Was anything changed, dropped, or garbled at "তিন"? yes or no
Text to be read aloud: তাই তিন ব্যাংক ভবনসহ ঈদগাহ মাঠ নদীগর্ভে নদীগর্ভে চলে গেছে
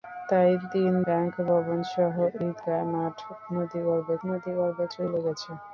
no